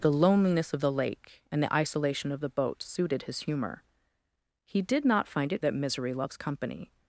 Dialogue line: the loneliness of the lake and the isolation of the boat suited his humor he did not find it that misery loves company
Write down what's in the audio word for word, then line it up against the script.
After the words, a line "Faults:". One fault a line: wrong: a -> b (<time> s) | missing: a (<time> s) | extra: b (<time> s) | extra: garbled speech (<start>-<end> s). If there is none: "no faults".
the loneliness of the lake and the isolation of the boat suited his humor he did not find it that misery loves company
Faults:
no faults